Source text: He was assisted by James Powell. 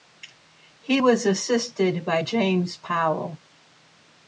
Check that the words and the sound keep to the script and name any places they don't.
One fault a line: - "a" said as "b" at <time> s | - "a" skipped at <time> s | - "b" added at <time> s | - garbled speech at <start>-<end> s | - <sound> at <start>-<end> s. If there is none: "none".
none